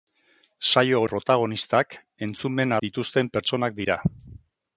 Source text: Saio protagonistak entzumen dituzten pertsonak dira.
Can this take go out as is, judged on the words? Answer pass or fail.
pass